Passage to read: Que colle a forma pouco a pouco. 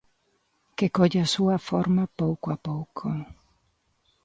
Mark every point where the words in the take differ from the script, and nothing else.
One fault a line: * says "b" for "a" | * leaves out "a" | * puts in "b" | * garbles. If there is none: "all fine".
* puts in "súa"